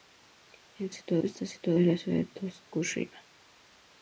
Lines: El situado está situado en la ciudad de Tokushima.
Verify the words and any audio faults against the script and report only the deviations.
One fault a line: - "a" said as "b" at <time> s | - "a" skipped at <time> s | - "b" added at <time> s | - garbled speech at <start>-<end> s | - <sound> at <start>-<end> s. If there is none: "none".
none